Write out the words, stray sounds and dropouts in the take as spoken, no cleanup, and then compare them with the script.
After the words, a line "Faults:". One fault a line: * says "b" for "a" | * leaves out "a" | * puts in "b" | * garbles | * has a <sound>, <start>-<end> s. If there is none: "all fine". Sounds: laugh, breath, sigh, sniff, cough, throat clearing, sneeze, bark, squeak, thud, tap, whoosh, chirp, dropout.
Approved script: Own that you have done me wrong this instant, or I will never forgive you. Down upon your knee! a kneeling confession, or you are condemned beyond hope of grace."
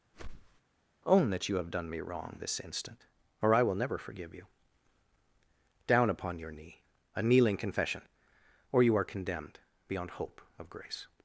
Own that you have done me wrong this instant, or I will never forgive you. Down upon your knee! a kneeling confession, or you are condemned beyond hope of grace."
Faults:
* has a whoosh, 0.1-0.6 s